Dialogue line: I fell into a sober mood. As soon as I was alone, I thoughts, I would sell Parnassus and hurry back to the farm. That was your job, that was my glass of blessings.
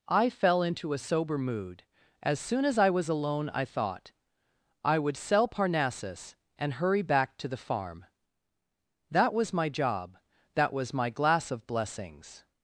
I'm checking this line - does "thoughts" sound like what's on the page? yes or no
no